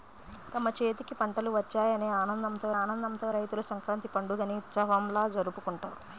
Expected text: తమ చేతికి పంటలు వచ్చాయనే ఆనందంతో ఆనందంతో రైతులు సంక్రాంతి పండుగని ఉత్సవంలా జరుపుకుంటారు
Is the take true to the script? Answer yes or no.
yes